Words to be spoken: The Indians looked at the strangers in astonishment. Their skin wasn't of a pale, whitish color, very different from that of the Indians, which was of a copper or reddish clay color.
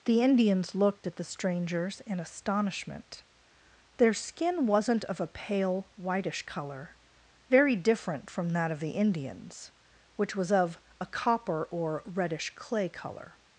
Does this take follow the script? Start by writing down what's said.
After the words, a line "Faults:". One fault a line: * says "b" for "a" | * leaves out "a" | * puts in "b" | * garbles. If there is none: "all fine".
The Indians looked at the strangers in astonishment. Their skin wasn't of a pale, whitish color, very different from that of the Indians, which was of a copper or reddish clay color.
Faults:
all fine